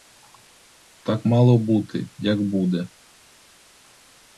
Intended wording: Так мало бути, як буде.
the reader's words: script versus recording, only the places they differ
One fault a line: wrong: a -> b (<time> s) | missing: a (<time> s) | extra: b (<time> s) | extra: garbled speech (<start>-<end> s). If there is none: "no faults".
no faults